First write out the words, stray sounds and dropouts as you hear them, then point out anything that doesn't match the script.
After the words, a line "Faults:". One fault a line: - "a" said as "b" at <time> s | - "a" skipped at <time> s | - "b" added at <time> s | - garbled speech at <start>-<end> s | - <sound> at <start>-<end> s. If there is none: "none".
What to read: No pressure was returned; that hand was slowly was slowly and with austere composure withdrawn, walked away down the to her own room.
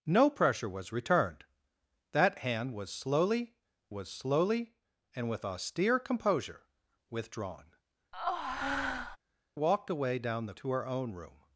No pressure was returned; that hand was slowly was slowly and with austere composure withdrawn, walked away down the to her own room.
Faults:
- breath at 8.1-9.2 s